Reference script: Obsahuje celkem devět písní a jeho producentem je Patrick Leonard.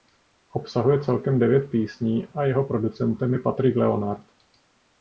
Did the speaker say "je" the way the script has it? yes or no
yes